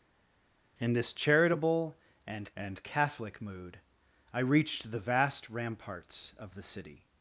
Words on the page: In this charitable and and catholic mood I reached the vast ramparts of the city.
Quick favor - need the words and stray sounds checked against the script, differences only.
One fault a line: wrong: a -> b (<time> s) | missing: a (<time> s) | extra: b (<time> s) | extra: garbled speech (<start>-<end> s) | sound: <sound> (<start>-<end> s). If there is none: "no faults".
no faults